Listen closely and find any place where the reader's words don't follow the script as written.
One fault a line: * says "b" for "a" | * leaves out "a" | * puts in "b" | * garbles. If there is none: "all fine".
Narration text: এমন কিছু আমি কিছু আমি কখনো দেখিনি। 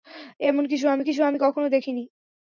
all fine